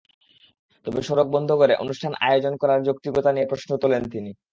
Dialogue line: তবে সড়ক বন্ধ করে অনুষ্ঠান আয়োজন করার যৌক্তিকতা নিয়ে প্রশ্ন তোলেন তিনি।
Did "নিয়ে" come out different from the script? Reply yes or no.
no